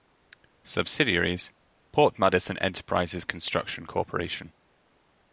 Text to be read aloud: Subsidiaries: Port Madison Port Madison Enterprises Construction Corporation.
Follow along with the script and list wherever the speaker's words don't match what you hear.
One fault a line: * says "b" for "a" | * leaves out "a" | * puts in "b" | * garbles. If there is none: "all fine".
* leaves out "Port Madison"